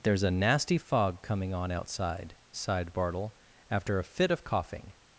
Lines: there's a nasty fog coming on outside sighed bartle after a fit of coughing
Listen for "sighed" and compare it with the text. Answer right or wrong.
right